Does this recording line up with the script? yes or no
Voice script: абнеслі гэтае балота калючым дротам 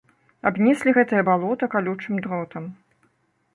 yes